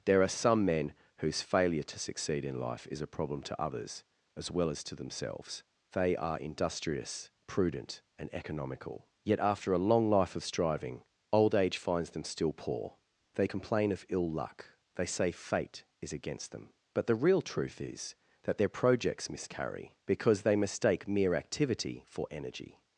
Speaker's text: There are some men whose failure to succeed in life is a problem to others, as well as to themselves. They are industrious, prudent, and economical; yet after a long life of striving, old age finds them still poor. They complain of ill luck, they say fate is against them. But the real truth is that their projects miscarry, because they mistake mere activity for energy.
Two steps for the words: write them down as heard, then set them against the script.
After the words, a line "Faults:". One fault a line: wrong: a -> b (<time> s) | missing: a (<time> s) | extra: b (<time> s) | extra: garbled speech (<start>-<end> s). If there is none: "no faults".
There are some men whose failure to succeed in life is a problem to others, as well as to themselves. They are industrious, prudent, and economical; yet after a long life of striving, old age finds them still poor. They complain of ill luck, they say fate is against them. But the real truth is that their projects miscarry, because they mistake mere activity for energy.
Faults:
no faults